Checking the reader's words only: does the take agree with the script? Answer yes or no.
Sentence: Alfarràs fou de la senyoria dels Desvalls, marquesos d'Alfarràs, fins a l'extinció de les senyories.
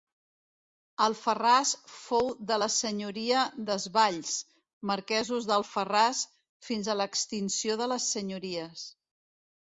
no